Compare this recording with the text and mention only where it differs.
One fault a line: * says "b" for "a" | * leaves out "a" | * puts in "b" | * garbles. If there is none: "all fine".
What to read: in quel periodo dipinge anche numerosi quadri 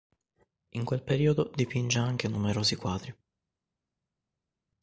all fine